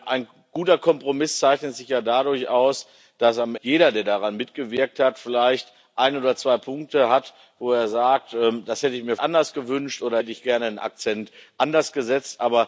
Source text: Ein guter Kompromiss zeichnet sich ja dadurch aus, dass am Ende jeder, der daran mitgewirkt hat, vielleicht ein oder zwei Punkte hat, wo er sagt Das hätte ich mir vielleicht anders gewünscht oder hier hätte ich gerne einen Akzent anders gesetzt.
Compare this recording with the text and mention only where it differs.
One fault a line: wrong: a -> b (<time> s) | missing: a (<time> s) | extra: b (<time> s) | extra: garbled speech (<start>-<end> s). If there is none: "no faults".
missing: Ende (3.5 s)
missing: vielleicht (9.2 s)
missing: hier (10.2 s)